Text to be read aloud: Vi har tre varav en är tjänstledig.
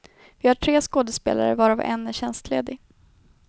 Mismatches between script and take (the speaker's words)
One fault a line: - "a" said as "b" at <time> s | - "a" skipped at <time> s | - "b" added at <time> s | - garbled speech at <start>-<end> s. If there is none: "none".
- "skådespelare" added at 0.8 s